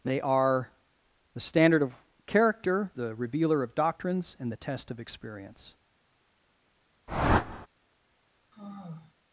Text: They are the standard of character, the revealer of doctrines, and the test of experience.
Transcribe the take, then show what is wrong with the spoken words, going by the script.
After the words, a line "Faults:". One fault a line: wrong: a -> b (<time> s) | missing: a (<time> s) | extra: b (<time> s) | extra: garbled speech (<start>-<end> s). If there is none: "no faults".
They are the standard of character, the revealer of doctrines, and the test of experience.
Faults:
no faults